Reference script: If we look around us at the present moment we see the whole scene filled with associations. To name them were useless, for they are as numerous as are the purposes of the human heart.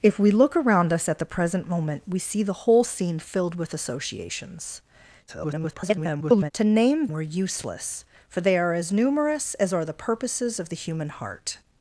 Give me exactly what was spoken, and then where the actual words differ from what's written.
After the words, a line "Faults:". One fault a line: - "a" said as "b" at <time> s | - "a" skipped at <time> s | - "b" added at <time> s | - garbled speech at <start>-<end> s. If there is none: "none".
If we look around us at the present moment we see the whole scene filled with associations. [garbled] To name were useless, for they are as numerous as are the purposes of the human heart.
Faults:
- garbled speech at 5.3-6.5 s
- "them" skipped at 7.1 s